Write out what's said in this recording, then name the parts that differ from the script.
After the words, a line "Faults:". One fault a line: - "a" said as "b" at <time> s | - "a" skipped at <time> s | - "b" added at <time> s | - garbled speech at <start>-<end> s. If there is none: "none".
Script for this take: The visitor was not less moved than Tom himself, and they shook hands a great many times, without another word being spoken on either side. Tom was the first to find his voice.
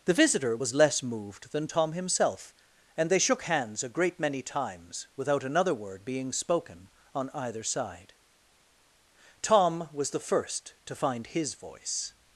The visitor was less moved than Tom himself, and they shook hands a great many times, without another word being spoken on either side. Tom was the first to find his voice.
Faults:
- "not" skipped at 0.7 s